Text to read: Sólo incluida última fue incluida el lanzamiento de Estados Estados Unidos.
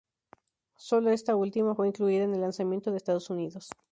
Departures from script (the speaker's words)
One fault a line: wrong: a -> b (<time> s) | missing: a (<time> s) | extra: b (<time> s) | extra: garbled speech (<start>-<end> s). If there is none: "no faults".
wrong: incluida -> esta (1.1 s)
extra: en (2.2 s)
missing: Estados (3.3 s)